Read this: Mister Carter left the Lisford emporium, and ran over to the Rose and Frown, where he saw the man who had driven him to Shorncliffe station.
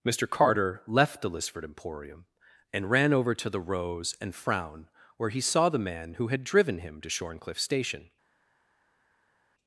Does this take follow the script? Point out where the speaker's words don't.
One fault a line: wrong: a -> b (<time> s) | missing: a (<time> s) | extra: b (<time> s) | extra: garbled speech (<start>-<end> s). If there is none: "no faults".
no faults